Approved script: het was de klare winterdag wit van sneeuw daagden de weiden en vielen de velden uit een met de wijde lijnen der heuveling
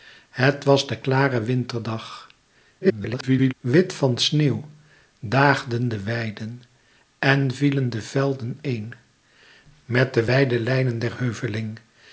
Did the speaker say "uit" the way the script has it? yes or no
no